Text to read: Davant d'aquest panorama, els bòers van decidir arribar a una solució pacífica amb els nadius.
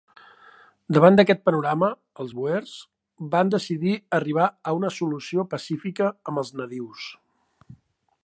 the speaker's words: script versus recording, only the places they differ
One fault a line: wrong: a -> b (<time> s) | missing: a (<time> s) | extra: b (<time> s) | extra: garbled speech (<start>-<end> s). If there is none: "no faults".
no faults